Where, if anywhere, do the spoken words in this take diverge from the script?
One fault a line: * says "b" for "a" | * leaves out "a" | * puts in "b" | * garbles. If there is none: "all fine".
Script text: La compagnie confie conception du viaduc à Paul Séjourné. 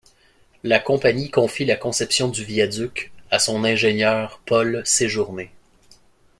* puts in "la"
* puts in "son ingénieur"